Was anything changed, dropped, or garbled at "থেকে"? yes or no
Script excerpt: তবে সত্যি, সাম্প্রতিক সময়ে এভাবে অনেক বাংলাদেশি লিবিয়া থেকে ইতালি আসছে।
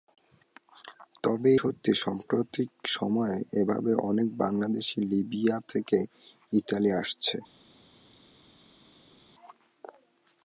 no